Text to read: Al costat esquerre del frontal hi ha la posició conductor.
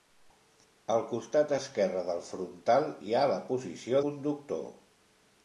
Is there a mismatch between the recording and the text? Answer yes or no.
no